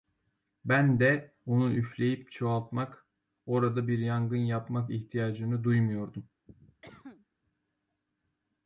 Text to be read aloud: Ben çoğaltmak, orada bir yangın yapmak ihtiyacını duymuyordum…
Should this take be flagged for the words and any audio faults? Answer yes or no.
yes